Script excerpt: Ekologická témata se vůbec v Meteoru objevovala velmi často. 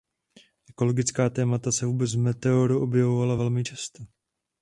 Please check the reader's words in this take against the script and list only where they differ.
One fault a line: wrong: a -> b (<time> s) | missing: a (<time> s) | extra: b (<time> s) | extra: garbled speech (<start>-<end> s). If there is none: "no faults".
no faults